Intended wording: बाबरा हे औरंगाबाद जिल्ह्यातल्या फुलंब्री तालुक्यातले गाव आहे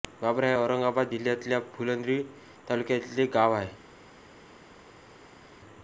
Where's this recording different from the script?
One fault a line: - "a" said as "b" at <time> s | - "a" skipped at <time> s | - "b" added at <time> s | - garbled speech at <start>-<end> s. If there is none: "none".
none